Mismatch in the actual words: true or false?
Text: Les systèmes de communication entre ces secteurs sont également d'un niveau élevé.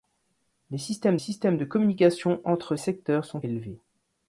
true